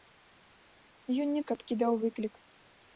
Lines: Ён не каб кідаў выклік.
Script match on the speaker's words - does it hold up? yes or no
yes